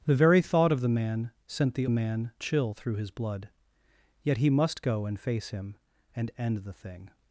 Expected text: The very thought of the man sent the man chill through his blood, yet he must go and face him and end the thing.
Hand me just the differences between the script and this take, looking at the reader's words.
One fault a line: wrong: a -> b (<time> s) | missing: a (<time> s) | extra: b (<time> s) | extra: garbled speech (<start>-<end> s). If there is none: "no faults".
no faults